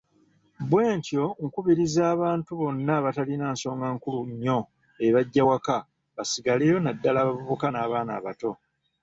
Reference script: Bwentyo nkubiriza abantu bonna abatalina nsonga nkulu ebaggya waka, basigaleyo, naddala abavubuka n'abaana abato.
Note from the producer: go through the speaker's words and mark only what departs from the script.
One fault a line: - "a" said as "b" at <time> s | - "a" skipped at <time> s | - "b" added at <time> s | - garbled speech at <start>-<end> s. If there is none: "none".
- "nnyo" added at 4.3 s